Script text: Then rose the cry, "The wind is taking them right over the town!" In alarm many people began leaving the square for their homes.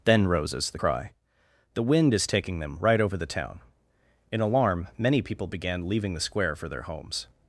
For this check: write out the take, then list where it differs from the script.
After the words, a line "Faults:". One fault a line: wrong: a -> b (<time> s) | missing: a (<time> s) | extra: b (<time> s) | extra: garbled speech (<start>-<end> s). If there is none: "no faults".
Then roses the cry, "The wind is taking them right over the town!" In alarm many people began leaving the square for their homes.
Faults:
wrong: rose -> roses (0.3 s)